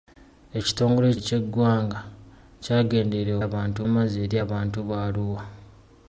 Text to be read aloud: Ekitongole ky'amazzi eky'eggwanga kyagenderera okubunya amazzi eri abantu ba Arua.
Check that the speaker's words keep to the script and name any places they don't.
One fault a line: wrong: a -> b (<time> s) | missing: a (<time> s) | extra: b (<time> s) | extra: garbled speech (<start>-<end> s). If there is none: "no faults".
missing: ky'amazzi (1.1 s)
wrong: okubunya -> abantu (3.5 s)